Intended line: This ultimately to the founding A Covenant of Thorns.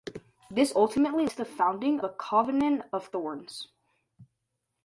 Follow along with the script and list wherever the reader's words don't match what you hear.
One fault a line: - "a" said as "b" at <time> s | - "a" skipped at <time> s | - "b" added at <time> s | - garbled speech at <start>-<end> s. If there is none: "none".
none